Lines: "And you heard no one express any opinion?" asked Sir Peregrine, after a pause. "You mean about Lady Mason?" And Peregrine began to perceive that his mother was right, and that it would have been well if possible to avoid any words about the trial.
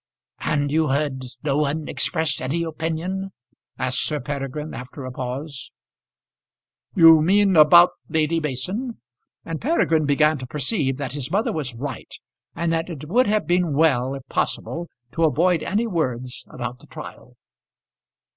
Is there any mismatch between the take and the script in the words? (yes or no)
no